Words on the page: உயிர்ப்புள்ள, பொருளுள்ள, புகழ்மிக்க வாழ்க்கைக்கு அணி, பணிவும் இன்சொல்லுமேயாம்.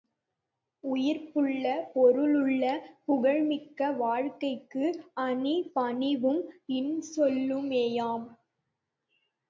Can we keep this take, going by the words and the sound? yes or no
yes